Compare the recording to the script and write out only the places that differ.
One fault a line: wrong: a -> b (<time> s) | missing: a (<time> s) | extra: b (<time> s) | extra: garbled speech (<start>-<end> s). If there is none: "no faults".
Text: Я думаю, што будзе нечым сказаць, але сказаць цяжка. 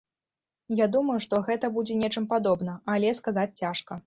extra: гэта (1.5 s)
wrong: сказаць -> падобна (2.3 s)